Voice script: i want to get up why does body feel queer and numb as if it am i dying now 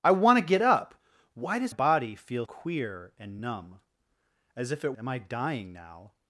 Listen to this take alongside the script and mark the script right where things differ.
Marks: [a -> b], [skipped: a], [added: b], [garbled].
i want to get up why does body feel queer and numb as if it am i dying now